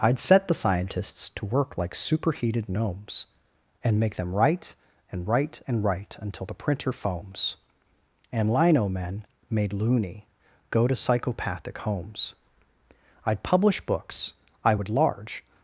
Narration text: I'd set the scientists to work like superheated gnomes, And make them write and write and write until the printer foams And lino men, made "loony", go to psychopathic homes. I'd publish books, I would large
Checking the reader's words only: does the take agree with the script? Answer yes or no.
yes